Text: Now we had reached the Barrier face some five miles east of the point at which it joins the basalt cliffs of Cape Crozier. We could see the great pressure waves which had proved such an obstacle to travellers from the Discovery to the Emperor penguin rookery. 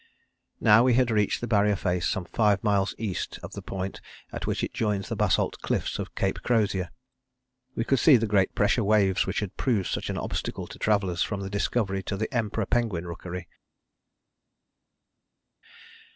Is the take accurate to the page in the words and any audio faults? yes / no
yes